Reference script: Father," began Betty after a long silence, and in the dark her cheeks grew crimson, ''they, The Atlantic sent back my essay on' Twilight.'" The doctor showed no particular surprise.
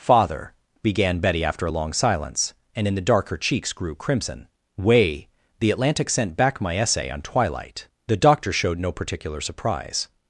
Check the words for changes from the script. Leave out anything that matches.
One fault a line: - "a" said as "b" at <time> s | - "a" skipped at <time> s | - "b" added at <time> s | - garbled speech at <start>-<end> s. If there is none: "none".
- "they" said as "way" at 4.8 s